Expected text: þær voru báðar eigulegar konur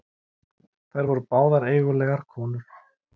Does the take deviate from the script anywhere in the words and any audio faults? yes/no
no